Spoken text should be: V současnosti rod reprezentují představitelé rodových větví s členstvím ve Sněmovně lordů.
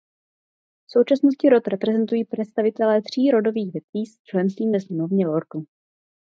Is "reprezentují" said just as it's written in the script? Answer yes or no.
yes